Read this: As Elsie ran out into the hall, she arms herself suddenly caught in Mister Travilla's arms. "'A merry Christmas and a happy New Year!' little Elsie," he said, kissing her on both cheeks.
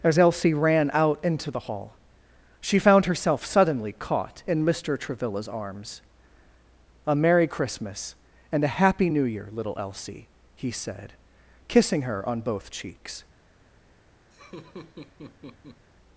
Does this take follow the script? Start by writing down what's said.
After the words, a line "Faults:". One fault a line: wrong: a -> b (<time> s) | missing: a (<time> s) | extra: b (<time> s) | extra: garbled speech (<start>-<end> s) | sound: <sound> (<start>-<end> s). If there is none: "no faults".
As Elsie ran out into the hall, she found herself suddenly caught in Mister Travilla's arms. "'A merry Christmas and a happy New Year!' little Elsie," he said, kissing her on both cheeks.
Faults:
wrong: arms -> found (2.8 s)
sound: laugh (14.3-15.9 s)